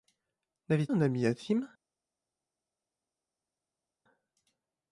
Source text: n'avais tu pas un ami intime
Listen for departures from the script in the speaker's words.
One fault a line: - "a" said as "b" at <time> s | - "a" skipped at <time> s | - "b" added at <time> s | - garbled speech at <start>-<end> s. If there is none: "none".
- "tu pas" skipped at 0.9 s